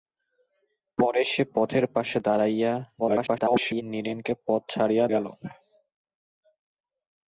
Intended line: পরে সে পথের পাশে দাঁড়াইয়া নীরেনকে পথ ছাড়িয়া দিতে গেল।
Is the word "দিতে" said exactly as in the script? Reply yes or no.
no